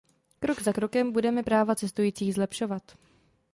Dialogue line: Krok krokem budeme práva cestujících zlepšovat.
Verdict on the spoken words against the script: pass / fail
fail